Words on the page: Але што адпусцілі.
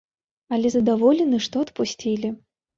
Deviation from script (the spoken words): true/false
true